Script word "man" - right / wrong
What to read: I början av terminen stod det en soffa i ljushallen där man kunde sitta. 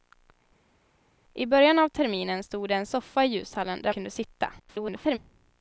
wrong